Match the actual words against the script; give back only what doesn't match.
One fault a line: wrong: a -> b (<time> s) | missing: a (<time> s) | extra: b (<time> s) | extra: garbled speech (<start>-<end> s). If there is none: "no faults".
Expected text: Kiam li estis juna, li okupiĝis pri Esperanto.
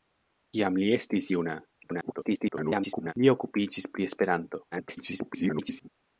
extra: garbled speech (1.8-3.1 s)
extra: garbled speech (4.7-5.9 s)